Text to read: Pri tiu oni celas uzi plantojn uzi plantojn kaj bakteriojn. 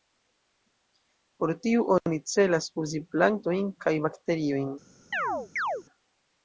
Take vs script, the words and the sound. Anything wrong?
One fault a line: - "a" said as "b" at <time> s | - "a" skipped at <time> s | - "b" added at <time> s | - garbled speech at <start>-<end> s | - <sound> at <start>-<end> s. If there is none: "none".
- "Pri" said as "Por" at 1.4 s
- "uzi plantojn" skipped at 3.7 s
- chirp at 5.1-5.8 s